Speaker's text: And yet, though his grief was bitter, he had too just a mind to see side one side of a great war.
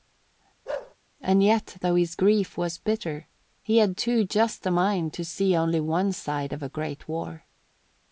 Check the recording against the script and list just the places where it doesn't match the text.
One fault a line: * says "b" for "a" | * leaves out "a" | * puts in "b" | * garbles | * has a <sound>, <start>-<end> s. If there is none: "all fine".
* has a bark, 0.7-1.0 s
* says "only" for "side"